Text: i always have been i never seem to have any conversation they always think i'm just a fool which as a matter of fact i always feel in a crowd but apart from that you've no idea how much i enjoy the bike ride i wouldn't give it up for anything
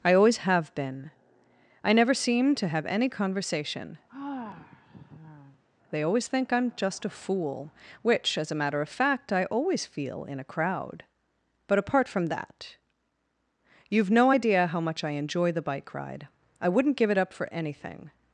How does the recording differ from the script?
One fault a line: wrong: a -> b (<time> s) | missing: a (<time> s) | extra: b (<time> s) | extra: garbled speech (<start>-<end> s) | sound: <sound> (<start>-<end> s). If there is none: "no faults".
sound: sigh (4.1-5.6 s)